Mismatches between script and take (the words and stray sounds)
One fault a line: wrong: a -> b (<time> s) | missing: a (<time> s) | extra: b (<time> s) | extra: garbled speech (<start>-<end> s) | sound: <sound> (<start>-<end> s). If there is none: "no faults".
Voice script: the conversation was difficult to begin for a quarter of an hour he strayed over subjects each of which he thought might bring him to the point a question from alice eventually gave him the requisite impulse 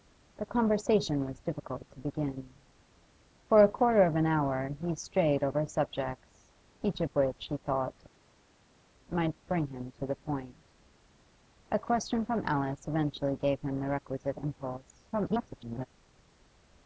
extra: garbled speech (15.1-15.9 s)